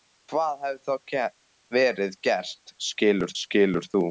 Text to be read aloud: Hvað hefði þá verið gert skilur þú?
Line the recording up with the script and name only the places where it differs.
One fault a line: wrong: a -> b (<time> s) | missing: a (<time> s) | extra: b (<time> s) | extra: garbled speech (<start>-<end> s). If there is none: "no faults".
extra: skilur (3.4 s)